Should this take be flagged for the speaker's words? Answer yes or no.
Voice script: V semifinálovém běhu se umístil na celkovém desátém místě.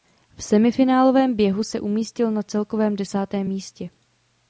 no